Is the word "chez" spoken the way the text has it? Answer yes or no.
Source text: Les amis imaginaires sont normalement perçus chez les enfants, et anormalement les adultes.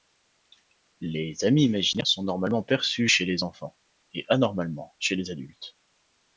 yes